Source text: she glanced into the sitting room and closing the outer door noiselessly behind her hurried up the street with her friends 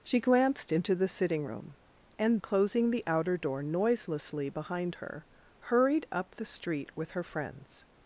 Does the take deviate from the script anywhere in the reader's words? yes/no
no